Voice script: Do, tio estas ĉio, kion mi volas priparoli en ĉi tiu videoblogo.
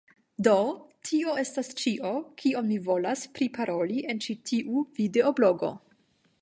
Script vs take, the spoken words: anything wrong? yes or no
no